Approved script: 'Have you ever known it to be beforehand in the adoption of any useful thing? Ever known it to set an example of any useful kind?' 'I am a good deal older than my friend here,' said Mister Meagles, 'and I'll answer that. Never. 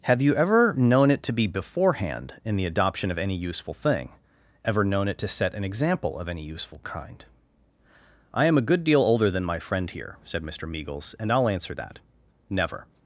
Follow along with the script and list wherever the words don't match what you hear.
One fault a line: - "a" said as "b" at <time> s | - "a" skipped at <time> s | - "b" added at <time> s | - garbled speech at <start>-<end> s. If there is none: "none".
none